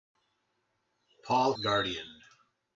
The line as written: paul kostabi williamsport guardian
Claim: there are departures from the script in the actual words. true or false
true